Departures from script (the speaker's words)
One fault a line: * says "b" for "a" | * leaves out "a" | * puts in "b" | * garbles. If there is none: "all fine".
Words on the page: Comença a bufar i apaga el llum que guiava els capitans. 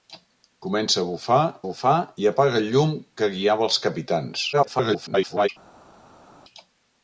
* puts in "bufar"
* garbles